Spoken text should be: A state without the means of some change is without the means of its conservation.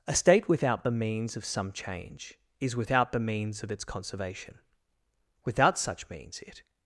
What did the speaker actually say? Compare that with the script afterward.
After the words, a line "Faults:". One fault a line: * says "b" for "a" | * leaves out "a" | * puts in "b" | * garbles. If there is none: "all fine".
A state without the means of some change is without the means of its conservation. Without such means it
Faults:
* puts in "Without such means it"